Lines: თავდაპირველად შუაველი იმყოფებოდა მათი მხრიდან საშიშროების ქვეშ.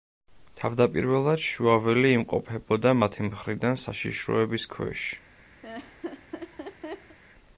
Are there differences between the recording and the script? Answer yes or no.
no